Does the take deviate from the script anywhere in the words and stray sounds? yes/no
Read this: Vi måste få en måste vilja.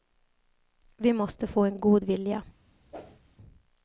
yes